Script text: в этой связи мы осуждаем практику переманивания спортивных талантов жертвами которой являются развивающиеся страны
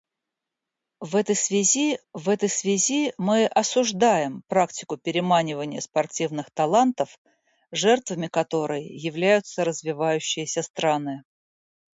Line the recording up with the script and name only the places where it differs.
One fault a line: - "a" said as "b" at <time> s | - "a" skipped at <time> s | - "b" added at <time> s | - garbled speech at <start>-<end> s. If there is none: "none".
- "в этой связи" added at 2.1 s